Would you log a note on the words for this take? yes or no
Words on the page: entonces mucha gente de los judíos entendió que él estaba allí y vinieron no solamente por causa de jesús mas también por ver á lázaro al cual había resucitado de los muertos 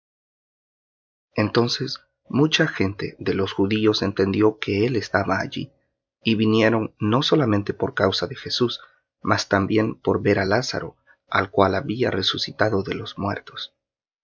no